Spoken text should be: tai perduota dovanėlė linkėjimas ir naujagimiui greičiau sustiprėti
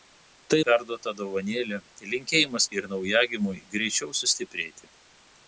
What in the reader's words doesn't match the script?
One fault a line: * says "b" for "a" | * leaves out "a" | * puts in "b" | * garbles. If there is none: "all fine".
all fine